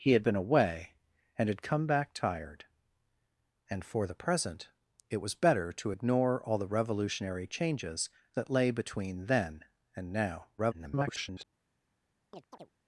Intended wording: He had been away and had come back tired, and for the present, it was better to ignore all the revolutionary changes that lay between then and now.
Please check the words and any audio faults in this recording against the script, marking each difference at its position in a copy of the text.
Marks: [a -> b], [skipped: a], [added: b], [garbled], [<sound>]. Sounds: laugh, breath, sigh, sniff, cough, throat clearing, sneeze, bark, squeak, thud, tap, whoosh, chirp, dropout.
He had been away and had come back tired, and for the present, it was better to ignore all the revolutionary changes that lay between then and now. [garbled] [chirp]